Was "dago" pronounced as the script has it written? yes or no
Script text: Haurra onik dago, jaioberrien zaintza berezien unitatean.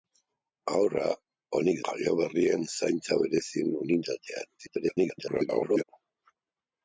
no